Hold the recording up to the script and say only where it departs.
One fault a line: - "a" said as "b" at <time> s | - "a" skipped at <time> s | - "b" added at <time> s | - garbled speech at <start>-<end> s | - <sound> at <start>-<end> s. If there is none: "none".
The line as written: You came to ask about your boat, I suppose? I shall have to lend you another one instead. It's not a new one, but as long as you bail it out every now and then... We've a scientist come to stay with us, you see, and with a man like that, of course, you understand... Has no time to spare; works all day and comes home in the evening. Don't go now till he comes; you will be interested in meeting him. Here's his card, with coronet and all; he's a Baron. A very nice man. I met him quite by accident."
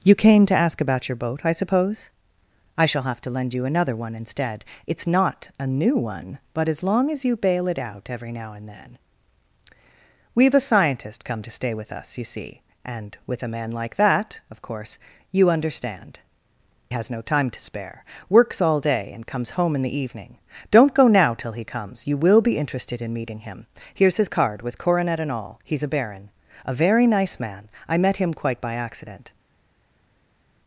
none